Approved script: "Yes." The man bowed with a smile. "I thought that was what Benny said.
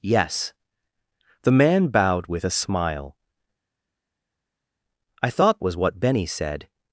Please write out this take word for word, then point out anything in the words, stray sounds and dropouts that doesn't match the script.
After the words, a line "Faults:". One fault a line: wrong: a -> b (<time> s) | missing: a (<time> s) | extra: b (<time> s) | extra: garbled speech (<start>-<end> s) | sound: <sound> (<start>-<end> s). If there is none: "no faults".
"Yes." The man bowed with a smile. "I thought was what Benny said.
Faults:
missing: that (5.6 s)